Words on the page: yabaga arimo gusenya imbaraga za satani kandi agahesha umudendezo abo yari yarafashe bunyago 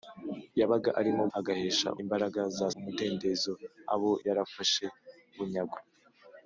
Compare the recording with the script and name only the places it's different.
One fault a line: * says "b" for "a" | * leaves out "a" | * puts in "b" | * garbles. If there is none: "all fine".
* says "agahesha" for "gusenya"
* leaves out "satani kandi agahesha"
* leaves out "yari"